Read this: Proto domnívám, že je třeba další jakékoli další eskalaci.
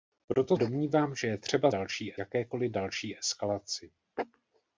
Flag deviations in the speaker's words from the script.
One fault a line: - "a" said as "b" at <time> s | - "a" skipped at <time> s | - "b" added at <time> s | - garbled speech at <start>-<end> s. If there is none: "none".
none